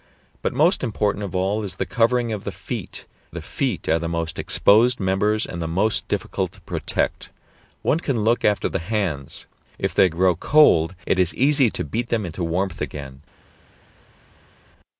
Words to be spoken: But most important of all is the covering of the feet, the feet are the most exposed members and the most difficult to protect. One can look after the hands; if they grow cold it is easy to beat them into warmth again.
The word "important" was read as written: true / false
true